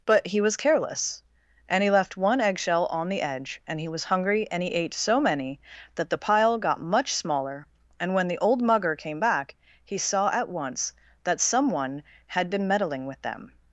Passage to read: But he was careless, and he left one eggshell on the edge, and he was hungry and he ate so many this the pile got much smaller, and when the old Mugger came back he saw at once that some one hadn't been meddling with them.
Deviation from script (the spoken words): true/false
true